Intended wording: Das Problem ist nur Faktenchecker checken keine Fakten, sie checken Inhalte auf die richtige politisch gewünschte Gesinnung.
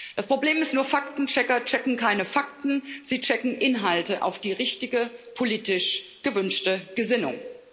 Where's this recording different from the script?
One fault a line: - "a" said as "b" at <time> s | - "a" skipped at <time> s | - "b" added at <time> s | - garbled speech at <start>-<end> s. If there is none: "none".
none